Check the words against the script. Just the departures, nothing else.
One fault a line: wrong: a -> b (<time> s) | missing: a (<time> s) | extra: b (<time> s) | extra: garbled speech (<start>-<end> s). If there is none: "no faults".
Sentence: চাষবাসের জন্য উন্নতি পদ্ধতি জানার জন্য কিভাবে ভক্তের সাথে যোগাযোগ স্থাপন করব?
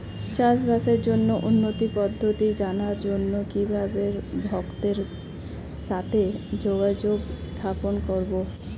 no faults